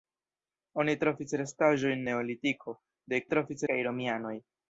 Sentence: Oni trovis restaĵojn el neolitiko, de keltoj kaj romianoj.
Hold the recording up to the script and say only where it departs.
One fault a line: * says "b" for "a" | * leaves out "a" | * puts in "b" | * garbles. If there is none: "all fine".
* leaves out "el"
* says "trovis" for "keltoj"